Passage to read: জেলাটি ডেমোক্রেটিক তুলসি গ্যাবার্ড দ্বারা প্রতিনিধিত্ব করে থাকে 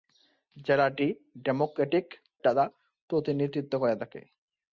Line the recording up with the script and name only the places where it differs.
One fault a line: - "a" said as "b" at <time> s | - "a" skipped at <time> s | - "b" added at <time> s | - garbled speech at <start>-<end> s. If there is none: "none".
- "তুলসি গ্যাবার্ড" skipped at 2.0 s